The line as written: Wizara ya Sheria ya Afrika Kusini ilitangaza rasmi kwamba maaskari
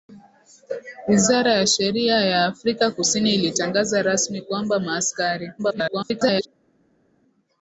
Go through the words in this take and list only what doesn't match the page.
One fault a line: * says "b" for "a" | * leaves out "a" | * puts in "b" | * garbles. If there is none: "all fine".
* garbles